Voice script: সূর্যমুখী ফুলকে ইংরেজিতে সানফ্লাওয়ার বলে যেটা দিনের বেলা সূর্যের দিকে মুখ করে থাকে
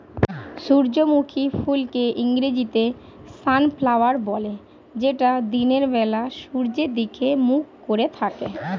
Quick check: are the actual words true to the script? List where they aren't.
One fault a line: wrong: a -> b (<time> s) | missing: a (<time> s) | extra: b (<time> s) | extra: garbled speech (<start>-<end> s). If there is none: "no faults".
no faults